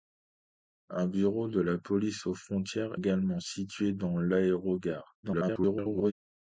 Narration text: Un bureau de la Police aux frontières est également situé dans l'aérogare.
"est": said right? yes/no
no